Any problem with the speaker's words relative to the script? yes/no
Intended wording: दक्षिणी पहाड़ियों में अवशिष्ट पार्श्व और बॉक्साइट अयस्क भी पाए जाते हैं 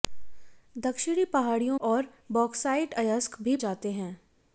yes